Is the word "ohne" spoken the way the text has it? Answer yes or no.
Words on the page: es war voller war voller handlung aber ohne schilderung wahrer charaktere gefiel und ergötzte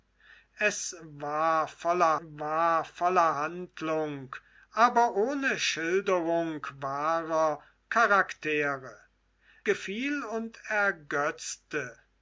yes